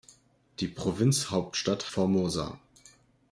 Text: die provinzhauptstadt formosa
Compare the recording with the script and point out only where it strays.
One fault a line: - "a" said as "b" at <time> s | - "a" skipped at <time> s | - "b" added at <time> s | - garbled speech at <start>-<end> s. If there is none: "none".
none